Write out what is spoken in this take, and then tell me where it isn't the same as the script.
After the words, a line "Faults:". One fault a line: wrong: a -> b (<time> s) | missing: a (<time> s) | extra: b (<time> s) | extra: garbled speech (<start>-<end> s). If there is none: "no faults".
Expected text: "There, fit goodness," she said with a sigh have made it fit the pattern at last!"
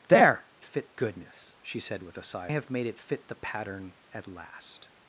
"There, fit goodness," she said with a sigh have made it fit the pattern at last!"
Faults:
no faults